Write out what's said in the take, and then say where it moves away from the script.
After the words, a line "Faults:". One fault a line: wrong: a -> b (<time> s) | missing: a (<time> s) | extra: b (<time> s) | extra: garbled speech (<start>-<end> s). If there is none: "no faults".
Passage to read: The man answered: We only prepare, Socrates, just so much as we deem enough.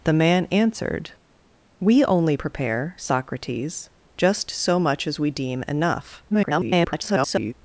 The man answered: We only prepare, Socrates, just so much as we deem enough. [garbled]
Faults:
extra: garbled speech (6.3-7.5 s)